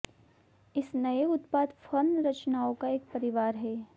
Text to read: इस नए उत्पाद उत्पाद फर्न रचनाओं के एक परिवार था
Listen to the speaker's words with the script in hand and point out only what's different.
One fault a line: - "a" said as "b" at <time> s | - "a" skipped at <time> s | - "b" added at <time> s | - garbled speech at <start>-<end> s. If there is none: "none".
- "उत्पाद" skipped at 1.7 s
- "के" said as "का" at 2.7 s
- "था" said as "है" at 3.5 s